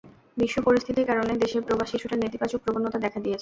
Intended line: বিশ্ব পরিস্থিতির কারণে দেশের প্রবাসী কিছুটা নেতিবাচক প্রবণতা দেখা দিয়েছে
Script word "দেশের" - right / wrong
right